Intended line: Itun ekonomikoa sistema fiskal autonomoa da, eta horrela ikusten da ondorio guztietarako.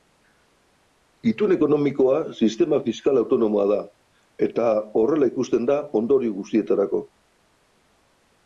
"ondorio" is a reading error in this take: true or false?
false